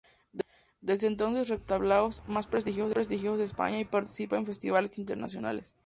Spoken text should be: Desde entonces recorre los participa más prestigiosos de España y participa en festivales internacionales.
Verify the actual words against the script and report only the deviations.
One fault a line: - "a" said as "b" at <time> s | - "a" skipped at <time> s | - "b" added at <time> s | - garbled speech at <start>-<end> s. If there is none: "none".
- "participa" said as "tablaos" at 1.7 s